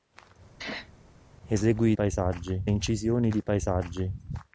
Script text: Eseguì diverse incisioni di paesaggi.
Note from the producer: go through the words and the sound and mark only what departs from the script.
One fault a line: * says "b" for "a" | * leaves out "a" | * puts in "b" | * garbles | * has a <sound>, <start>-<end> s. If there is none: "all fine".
* has a sneeze, 0.6-0.9 s
* says "paesaggi" for "diverse"